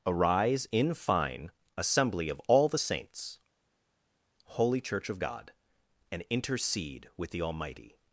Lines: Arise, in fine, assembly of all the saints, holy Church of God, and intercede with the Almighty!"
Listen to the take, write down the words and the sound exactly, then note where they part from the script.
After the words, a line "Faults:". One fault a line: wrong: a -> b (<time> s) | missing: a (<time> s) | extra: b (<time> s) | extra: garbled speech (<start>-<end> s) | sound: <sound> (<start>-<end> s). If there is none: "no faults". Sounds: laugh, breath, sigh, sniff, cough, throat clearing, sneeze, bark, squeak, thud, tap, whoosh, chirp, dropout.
Arise, in fine, assembly of all the saints, holy Church of God, and intercede with the Almighty!"
Faults:
no faults